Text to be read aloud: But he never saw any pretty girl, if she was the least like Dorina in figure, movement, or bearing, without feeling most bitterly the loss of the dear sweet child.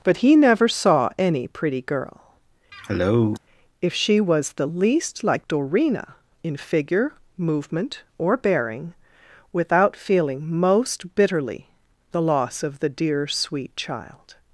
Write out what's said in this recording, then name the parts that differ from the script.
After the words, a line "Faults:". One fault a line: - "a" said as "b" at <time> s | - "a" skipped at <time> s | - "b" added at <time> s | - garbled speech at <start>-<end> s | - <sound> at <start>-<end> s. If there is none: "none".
But he never saw any pretty girl, if she was the least like Dorina in figure, movement, or bearing, without feeling most bitterly the loss of the dear sweet child.
Faults:
- cough at 2.7-3.4 s